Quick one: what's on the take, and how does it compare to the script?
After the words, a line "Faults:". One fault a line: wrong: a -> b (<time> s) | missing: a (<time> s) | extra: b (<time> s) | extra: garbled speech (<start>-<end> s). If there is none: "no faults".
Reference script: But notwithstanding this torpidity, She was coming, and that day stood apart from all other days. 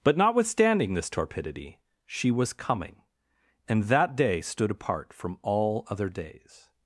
But notwithstanding this torpidity, She was coming, and that day stood apart from all other days.
Faults:
no faults